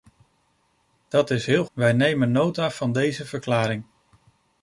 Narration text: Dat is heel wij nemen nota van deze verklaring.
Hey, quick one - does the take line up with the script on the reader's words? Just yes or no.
yes